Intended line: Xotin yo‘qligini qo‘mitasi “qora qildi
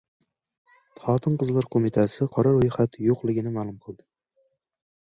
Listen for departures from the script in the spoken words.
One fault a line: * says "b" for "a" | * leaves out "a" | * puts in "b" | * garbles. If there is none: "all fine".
* says "qizlar" for "yo‘qligini"
* puts in "ro‘yxat yo‘qligini ma'lum"